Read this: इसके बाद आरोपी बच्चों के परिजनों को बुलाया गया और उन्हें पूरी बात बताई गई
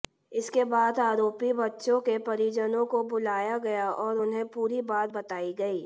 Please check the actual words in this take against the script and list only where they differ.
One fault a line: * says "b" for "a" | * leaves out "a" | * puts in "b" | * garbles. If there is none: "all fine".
all fine